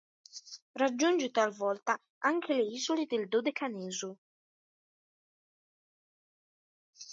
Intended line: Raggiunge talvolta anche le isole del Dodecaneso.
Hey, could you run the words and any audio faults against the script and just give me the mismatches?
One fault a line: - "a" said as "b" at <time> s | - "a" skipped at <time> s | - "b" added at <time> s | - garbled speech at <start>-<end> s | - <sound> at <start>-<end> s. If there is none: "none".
none